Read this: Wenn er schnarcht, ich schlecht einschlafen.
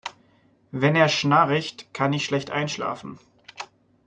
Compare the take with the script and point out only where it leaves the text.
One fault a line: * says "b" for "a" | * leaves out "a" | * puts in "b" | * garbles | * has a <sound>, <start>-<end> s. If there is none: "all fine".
* puts in "kann"